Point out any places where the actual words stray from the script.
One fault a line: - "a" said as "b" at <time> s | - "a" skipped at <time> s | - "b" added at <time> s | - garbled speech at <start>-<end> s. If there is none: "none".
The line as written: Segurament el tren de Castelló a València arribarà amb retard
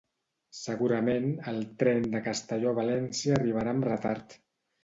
none